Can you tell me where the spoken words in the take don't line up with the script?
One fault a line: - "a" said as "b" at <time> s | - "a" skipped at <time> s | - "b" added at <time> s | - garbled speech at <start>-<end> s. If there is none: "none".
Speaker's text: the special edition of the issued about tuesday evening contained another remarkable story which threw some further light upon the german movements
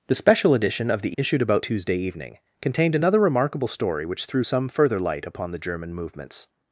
none